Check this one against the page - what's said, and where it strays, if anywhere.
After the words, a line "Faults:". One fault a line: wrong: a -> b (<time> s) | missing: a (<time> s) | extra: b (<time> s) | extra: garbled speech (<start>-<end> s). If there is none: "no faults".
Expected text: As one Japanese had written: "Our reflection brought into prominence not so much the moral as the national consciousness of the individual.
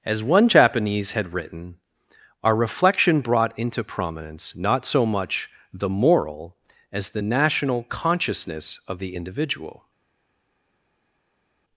As one Japanese had written: "Our reflection brought into prominence not so much the moral as the national consciousness of the individual.
Faults:
no faults